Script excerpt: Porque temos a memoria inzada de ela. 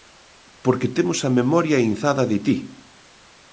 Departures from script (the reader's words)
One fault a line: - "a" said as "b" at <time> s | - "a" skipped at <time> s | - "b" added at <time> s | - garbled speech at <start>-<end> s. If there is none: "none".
- "ela" said as "ti" at 2.5 s